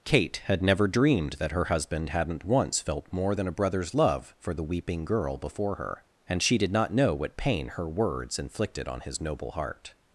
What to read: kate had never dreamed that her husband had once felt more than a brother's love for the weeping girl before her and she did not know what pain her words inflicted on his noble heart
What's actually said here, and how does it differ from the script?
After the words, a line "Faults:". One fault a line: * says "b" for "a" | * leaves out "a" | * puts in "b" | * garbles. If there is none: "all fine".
kate had never dreamed that her husband hadn't once felt more than a brother's love for the weeping girl before her and she did not know what pain her words inflicted on his noble heart
Faults:
* says "hadn't" for "had"